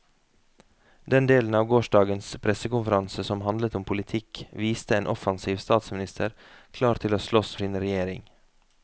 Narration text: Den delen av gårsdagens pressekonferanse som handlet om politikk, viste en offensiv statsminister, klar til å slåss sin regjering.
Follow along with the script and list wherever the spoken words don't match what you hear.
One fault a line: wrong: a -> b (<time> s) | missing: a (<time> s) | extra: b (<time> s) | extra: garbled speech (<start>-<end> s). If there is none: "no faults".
no faults